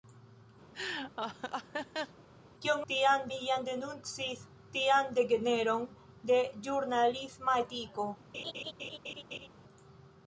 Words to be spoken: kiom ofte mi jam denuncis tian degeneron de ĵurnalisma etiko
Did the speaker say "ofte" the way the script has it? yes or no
no